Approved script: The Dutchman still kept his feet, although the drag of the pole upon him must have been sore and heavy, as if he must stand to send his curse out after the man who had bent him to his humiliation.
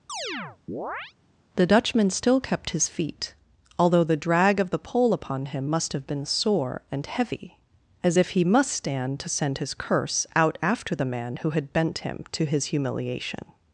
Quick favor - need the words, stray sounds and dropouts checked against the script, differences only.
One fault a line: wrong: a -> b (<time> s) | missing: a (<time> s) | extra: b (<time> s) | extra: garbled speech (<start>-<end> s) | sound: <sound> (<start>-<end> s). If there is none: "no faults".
sound: chirp (0.1-1.1 s)